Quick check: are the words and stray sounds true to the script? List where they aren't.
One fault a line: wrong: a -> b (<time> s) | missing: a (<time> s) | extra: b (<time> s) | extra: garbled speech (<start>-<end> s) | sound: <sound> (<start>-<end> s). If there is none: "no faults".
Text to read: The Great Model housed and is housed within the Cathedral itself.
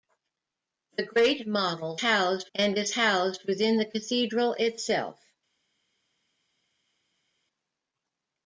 no faults